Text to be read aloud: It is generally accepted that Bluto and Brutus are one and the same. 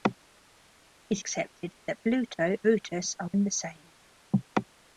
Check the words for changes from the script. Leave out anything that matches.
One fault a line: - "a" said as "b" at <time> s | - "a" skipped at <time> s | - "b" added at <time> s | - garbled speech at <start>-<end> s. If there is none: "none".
- "is generally" skipped at 1.2 s
- "and" skipped at 2.6 s
- "one" skipped at 3.3 s